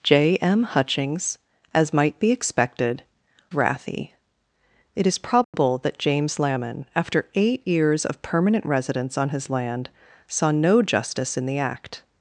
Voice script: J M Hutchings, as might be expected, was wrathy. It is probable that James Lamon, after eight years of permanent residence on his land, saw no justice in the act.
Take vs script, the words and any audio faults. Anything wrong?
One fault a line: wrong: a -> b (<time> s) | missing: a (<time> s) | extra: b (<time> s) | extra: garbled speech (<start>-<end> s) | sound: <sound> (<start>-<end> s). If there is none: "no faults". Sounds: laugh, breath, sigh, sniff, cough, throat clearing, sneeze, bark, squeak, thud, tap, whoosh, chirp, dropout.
missing: was (3.0 s)
sound: dropout (5.4-5.5 s)